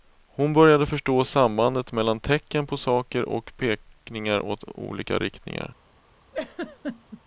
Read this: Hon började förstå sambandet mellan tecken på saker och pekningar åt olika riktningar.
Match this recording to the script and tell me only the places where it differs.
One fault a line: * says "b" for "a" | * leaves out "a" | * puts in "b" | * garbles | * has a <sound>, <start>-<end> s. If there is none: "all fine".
* has a laugh, 6.3-7.2 s